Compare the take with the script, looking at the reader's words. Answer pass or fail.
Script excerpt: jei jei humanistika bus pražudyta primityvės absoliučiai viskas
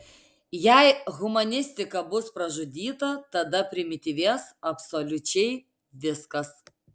fail